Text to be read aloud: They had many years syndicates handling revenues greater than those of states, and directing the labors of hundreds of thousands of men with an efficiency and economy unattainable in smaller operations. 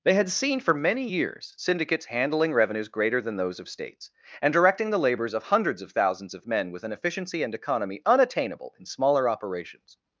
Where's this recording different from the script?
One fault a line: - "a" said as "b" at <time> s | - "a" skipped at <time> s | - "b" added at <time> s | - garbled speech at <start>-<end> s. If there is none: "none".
- "seen for" added at 0.3 s